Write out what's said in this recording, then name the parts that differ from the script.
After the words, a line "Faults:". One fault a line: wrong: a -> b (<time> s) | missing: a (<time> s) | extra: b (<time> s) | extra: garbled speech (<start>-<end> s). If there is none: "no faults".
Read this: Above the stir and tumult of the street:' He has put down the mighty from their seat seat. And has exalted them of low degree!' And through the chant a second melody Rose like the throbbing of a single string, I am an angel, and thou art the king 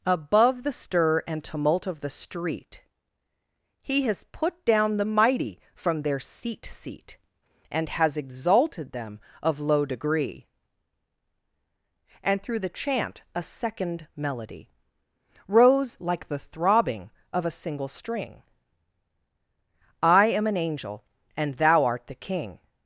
Above the stir and tumult of the street:' He has put down the mighty from their seat seat. And has exalted them of low degree!' And through the chant a second melody Rose like the throbbing of a single string, I am an angel, and thou art the king
Faults:
no faults